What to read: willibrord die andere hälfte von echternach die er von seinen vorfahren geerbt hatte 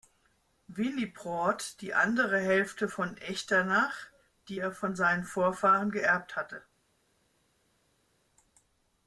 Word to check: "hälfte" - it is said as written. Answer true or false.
true